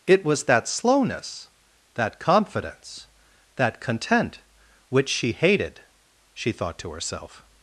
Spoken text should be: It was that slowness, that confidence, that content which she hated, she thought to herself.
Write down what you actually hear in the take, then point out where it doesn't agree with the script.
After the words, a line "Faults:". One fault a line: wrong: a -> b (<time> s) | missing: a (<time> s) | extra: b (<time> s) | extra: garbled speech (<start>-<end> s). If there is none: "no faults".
It was that slowness, that confidence, that content which she hated, she thought to herself.
Faults:
no faults